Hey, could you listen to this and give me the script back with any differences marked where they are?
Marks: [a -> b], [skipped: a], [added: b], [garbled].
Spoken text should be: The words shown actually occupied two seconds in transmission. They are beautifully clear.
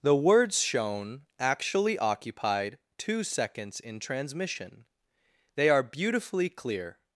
The words shown actually occupied two seconds in transmission. They are beautifully clear.